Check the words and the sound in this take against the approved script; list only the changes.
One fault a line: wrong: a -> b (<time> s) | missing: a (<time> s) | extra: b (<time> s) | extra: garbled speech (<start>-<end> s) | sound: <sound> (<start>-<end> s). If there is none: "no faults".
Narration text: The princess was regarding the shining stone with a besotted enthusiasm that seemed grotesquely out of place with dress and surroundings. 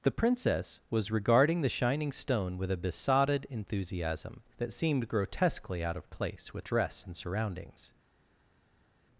no faults